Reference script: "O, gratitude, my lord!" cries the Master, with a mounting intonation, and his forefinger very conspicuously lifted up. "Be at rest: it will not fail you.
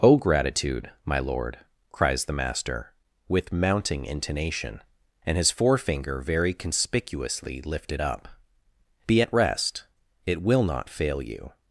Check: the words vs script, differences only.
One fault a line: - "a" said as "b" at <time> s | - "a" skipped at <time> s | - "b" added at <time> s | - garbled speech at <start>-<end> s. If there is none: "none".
- "a" skipped at 3.5 s